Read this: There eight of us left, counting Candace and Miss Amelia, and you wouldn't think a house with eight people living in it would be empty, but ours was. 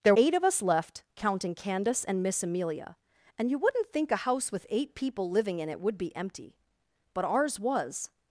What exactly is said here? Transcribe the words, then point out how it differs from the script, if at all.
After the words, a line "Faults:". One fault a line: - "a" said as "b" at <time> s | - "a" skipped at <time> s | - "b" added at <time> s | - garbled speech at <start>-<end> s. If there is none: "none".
There eight of us left, counting Candace and Miss Amelia, and you wouldn't think a house with eight people living in it would be empty, but ours was.
Faults:
none